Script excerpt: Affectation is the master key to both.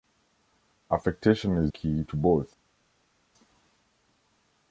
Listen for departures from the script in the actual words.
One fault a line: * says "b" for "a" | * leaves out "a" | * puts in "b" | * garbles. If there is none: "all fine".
* leaves out "the master"